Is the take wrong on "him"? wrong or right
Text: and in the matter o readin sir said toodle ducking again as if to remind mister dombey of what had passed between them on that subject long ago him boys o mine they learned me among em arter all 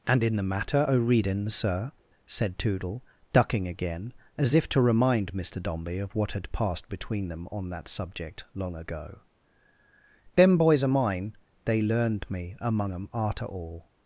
wrong